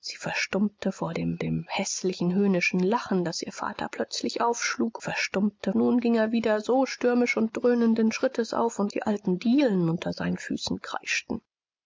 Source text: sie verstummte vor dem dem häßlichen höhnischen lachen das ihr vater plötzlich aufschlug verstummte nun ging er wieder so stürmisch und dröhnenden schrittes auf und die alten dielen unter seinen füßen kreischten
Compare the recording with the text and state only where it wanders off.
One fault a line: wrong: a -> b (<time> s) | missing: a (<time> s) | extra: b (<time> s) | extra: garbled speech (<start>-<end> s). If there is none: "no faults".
no faults